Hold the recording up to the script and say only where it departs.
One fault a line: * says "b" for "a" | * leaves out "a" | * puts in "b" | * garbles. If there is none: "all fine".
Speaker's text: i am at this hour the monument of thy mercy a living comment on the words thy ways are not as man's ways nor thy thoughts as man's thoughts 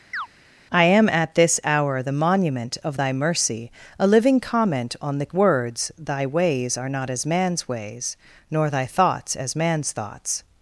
all fine